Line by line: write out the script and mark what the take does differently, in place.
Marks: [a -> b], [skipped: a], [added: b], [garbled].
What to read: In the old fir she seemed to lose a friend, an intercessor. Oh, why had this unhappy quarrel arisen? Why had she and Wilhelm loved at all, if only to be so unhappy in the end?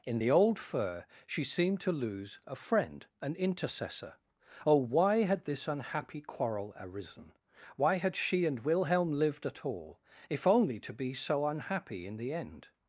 In the old fir she seemed to lose a friend, an intercessor. Oh, why had this unhappy quarrel arisen? Why had she and Wilhelm [loved -> lived] at all, if only to be so unhappy in the end?